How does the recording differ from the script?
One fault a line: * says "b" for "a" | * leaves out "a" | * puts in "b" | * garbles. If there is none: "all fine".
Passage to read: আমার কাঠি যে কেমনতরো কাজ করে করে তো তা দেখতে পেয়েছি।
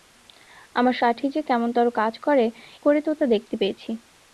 all fine